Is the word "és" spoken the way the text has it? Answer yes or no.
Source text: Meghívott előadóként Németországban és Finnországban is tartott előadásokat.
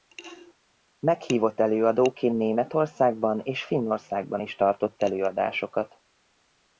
yes